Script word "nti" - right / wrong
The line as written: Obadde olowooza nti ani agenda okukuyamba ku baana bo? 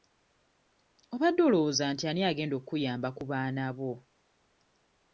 right